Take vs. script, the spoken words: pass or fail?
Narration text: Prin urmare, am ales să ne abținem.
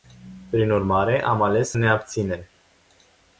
pass